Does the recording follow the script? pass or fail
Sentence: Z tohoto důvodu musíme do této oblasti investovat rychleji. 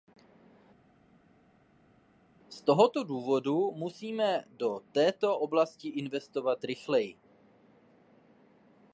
pass